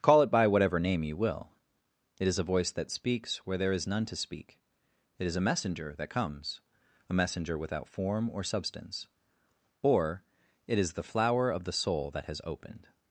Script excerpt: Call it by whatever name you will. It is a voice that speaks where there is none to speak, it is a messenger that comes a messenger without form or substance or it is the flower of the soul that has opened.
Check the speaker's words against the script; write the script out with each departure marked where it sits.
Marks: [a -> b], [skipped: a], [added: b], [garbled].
Call it by whatever name you will. It is a voice that speaks where there is none to speak, it is a messenger that comes a messenger without form or substance or it is the flower of the soul that has opened.